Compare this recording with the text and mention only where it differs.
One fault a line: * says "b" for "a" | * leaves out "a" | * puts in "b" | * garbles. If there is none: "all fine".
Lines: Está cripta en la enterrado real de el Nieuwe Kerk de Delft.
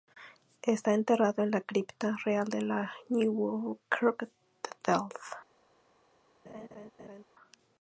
* says "enterrado" for "cripta"
* says "cripta" for "enterrado"
* says "la" for "el"